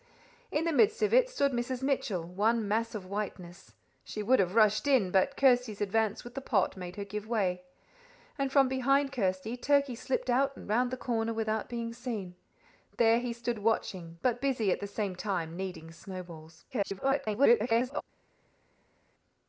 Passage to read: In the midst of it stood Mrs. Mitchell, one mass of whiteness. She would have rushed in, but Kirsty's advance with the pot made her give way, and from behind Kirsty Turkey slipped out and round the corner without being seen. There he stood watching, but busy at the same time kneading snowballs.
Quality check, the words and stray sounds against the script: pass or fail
fail